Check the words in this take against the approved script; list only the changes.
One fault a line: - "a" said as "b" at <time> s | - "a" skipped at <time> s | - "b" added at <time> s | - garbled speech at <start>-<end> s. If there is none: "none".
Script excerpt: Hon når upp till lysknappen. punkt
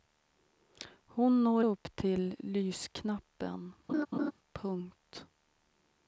none